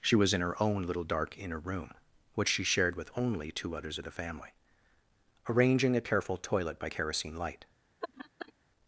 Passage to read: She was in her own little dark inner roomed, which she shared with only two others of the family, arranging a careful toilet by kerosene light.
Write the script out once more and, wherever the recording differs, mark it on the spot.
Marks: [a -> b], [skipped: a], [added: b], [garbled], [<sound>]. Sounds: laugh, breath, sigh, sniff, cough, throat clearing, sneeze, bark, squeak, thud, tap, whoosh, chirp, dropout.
She was in her own little dark inner [roomed, -> room] which she shared with only two others of the family, arranging a careful toilet by kerosene light. [laugh]